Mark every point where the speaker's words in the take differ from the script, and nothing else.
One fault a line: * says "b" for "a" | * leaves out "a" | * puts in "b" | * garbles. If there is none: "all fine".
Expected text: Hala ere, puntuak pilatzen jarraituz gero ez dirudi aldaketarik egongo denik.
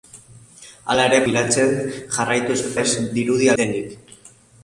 * leaves out "puntuak"
* leaves out "gero"
* leaves out "aldaketarik egongo"